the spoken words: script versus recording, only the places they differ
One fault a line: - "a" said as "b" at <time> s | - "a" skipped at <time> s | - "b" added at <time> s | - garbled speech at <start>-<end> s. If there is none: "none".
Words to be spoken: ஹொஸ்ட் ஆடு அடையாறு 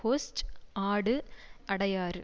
none